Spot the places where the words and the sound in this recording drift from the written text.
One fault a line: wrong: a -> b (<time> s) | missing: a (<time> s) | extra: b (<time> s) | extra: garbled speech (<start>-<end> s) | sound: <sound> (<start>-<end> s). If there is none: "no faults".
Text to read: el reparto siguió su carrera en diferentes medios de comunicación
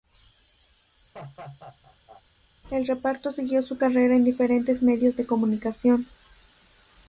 sound: laugh (1.1-2.2 s)